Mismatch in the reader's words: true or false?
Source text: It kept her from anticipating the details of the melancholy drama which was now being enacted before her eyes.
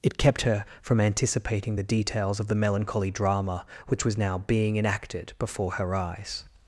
false